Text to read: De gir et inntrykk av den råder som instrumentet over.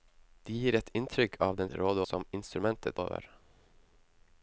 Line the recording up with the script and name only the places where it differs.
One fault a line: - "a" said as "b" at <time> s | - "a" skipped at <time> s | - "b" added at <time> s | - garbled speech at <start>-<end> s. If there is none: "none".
none